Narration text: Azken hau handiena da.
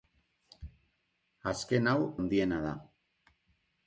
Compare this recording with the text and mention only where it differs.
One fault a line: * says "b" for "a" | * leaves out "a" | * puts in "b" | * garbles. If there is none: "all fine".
all fine